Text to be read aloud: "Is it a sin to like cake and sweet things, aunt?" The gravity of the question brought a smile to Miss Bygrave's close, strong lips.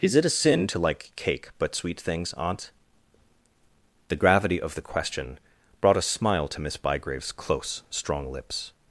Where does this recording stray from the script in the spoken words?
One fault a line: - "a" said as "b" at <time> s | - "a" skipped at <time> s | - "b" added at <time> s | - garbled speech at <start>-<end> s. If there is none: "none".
- "and" said as "but" at 1.6 s